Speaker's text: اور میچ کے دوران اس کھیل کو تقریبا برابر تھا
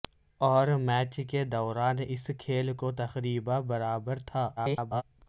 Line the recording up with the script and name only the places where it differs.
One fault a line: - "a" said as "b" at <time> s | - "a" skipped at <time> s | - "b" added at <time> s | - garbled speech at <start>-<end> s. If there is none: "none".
- garbled speech at 4.6-5.0 s